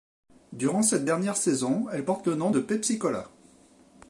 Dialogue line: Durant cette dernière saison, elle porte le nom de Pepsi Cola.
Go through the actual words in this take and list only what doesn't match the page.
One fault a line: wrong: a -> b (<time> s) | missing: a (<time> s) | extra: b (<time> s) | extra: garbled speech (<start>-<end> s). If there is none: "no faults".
no faults